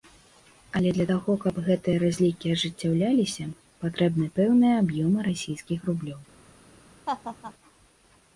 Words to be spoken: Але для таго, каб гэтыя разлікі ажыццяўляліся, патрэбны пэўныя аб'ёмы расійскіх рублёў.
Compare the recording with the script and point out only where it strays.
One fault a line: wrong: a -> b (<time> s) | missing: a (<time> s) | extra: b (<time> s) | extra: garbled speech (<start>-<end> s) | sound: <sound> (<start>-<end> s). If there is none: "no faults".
sound: laugh (7.1-7.5 s)